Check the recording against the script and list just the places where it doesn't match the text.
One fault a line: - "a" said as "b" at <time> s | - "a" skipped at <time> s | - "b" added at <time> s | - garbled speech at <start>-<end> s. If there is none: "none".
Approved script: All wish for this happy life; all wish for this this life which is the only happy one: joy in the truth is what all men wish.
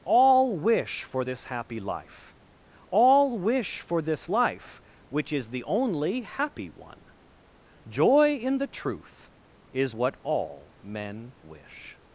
- "this" skipped at 4.3 s